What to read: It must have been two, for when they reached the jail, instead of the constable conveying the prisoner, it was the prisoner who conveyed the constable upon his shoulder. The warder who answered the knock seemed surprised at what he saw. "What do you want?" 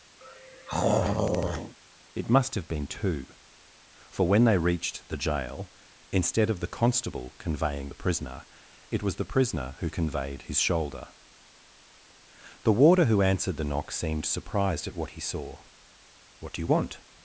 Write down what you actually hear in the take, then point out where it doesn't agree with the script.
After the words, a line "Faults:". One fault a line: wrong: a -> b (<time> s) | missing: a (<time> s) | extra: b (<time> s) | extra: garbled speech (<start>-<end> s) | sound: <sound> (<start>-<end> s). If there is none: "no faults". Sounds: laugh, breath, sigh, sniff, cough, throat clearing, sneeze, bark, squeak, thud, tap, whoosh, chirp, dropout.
It must have been two, for when they reached the jail, instead of the constable conveying the prisoner, it was the prisoner who conveyed his shoulder. The warder who answered the knock seemed surprised at what he saw. "What do you want?"
Faults:
sound: throat clearing (0.2-1.8 s)
missing: the constable upon (10.4 s)